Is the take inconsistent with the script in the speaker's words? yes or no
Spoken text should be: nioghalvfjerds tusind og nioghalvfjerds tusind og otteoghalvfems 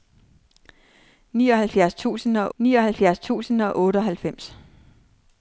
no